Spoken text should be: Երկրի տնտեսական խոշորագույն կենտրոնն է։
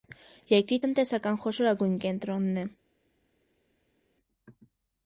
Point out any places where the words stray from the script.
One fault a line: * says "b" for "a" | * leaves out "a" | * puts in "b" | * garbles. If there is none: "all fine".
all fine